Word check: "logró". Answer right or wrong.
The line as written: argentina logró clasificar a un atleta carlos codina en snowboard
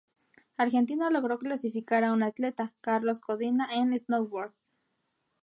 right